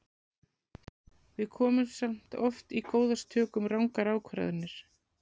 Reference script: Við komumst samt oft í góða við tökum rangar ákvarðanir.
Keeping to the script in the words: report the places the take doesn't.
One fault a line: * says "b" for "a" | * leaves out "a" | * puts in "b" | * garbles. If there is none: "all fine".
all fine